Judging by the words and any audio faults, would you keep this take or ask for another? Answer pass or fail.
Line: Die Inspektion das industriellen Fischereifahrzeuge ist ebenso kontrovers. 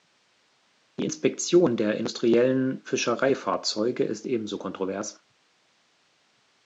fail